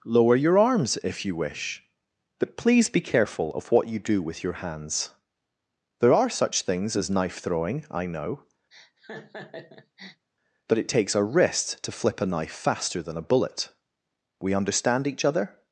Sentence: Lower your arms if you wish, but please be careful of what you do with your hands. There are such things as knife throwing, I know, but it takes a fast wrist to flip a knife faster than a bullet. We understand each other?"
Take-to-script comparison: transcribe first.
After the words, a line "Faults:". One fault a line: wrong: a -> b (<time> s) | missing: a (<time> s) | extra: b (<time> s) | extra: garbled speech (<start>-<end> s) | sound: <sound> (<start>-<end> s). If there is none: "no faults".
Lower your arms if you wish, but please be careful of what you do with your hands. There are such things as knife throwing, I know, but it takes a wrist to flip a knife faster than a bullet. We understand each other?"
Faults:
sound: laugh (8.7-10.3 s)
missing: fast (11.2 s)